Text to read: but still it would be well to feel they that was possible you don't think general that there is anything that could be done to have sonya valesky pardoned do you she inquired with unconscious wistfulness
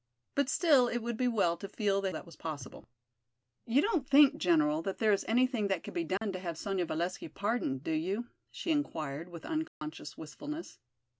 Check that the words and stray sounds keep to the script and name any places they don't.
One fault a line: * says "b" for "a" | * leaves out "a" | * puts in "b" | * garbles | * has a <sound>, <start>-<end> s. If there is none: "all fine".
* has a dropout, 6.2-6.2 s
* has a dropout, 9.7-9.8 s